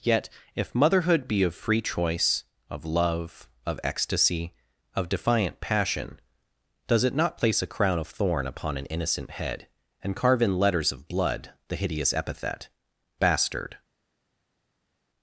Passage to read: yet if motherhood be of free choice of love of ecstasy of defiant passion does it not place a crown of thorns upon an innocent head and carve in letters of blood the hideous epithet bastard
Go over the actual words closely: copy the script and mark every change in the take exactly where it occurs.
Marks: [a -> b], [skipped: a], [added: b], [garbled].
yet if motherhood be of free choice of love of ecstasy of defiant passion does it not place a crown of [thorns -> thorn] upon an innocent head and carve in letters of blood the hideous epithet bastard